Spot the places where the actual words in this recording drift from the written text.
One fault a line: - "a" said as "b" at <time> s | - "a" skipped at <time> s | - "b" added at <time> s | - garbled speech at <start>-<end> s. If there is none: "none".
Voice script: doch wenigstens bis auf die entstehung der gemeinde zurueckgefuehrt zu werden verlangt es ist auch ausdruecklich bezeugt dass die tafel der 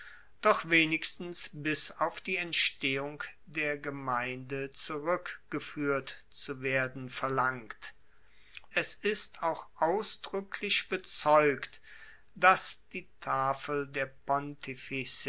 none